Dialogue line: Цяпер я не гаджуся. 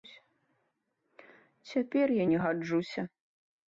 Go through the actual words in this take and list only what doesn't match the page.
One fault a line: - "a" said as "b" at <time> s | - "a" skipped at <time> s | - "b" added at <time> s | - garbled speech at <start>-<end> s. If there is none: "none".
none